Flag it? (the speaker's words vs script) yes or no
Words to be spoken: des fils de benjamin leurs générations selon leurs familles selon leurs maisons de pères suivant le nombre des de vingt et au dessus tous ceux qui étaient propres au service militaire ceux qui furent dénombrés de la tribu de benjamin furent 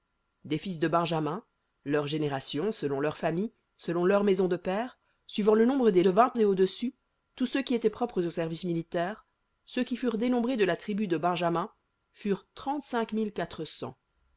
no